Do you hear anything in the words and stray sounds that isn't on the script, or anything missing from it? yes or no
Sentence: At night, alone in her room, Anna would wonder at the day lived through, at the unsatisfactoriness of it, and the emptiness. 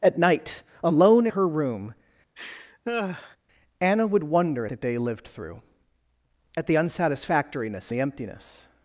yes